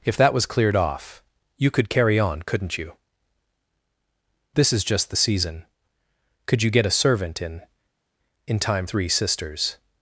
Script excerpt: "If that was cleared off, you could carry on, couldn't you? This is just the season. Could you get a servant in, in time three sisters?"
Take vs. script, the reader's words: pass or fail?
pass